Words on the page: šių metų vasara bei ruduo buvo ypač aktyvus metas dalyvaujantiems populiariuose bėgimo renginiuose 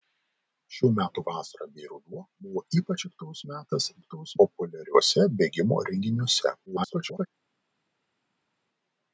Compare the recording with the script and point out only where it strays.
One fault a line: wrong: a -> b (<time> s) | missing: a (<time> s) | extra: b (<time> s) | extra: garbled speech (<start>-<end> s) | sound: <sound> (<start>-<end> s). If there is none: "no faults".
wrong: dalyvaujantiems -> aktyvus (4.0 s)
extra: garbled speech (6.7-7.3 s)